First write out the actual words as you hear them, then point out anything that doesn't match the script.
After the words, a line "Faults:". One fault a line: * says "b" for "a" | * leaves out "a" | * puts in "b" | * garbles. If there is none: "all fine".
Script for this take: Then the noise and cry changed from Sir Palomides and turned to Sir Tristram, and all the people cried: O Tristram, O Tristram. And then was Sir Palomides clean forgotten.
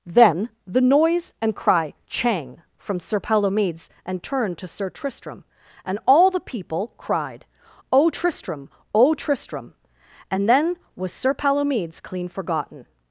Then the noise and cry chang from Sir Palomides and turned to Sir Tristram, and all the people cried: O Tristram, O Tristram. And then was Sir Palomides clean forgotten.
Faults:
* says "chang" for "changed"